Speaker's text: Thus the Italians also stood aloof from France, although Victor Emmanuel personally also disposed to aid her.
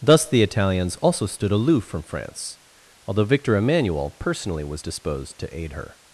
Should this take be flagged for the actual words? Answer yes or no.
yes